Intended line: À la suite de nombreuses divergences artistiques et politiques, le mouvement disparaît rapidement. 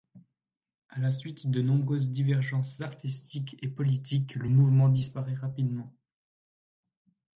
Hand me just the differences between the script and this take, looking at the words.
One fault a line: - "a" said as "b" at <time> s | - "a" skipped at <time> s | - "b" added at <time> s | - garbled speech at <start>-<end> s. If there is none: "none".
none